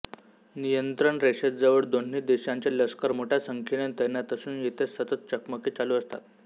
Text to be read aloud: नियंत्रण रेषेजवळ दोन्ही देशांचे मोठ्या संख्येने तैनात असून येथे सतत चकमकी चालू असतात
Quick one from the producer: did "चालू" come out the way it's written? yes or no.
yes